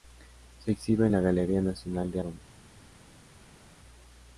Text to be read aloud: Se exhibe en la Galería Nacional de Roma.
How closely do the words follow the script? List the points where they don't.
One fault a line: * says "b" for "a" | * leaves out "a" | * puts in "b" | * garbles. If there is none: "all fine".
all fine